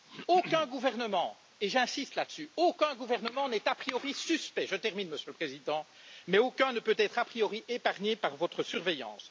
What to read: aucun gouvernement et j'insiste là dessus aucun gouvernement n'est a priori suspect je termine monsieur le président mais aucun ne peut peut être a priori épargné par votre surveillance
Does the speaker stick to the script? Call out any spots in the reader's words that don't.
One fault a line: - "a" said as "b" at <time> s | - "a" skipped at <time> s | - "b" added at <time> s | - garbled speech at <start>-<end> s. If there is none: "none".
- "peut" skipped at 6.9 s